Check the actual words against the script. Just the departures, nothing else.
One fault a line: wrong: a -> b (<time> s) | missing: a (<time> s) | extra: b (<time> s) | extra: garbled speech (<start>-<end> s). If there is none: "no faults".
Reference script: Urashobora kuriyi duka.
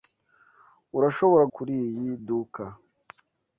no faults